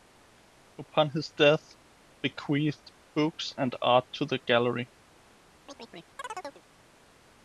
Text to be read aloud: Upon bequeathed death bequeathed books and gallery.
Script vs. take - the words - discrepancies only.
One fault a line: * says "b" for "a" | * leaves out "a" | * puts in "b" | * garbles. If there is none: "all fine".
* says "his" for "bequeathed"
* puts in "art to the"